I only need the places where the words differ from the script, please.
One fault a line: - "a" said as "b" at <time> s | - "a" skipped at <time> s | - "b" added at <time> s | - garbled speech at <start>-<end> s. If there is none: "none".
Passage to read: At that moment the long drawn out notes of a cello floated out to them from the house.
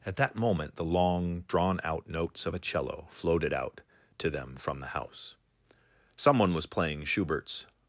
- "Someone was playing Schubert's" added at 6.2 s